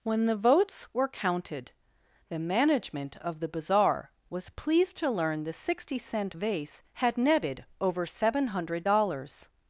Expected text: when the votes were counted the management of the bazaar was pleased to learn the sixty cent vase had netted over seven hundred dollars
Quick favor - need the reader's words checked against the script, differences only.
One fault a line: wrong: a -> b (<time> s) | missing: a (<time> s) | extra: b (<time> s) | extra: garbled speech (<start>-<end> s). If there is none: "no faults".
no faults